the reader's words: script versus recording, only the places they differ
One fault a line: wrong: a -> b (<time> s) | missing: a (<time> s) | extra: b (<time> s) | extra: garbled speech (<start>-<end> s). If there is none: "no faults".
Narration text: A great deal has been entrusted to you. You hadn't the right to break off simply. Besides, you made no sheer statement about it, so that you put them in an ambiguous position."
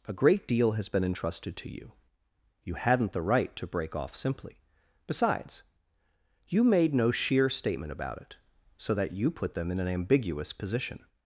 no faults